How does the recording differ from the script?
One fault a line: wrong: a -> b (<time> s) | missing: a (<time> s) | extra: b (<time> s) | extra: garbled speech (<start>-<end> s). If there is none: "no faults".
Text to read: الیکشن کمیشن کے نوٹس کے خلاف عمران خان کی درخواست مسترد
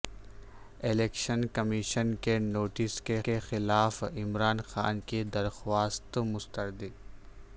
extra: کے (3.2 s)